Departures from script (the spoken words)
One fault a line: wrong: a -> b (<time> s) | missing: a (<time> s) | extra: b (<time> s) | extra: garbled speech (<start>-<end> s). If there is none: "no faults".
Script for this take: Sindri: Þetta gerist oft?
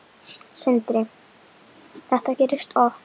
no faults